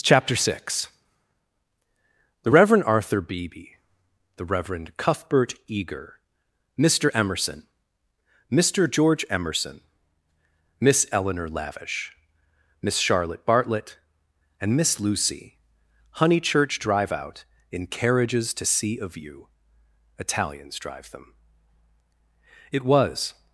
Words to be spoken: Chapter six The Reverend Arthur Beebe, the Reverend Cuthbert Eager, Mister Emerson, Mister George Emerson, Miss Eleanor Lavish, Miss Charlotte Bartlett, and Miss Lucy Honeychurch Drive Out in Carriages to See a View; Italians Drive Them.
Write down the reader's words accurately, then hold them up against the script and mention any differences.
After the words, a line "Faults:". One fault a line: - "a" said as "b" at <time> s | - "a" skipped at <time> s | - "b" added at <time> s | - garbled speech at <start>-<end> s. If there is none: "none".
Chapter six The Reverend Arthur Beebe, the Reverend Cuthbert Eager, Mister Emerson, Mister George Emerson, Miss Eleanor Lavish, Miss Charlotte Bartlett, and Miss Lucy Honeychurch Drive Out in Carriages to See a View; Italians Drive Them. It was
Faults:
- "It was" added at 22.7 s